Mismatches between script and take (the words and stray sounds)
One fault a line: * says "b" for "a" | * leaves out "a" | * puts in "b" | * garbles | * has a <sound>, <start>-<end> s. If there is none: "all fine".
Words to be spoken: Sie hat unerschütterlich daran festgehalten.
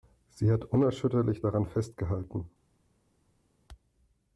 all fine